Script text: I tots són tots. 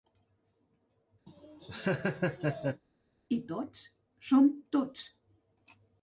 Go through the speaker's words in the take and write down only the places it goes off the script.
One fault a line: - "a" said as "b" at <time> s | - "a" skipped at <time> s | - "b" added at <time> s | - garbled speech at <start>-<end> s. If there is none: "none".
none